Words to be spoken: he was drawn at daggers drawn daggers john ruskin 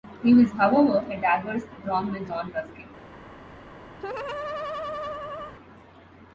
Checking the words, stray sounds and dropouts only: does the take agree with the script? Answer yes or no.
no